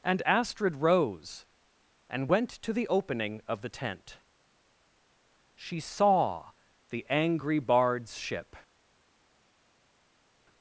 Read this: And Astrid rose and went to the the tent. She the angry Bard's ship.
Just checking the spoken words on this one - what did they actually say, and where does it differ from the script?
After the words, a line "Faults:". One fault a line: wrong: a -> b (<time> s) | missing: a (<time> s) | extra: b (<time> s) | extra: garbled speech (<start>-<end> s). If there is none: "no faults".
And Astrid rose and went to the opening of the tent. She saw the angry Bard's ship.
Faults:
extra: opening of (2.9 s)
extra: saw (5.8 s)